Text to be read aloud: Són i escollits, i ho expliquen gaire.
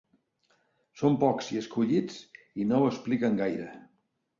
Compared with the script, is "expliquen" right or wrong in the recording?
right